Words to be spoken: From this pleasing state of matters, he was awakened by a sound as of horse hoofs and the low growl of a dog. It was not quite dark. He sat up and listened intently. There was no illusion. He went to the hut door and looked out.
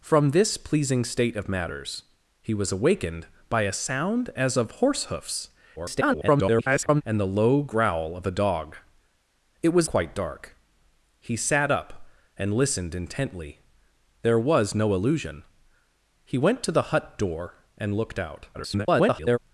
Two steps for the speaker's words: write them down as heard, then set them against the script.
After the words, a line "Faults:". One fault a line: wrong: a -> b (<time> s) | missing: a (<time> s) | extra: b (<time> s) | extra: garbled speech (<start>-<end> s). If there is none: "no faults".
From this pleasing state of matters, he was awakened by a sound as of horse hoofs [garbled] and the low growl of a dog. It was quite dark. He sat up and listened intently. There was no illusion. He went to the hut door and looked out. [garbled]
Faults:
extra: garbled speech (5.8-7.0 s)
missing: not (9.9 s)
extra: garbled speech (18.5-19.4 s)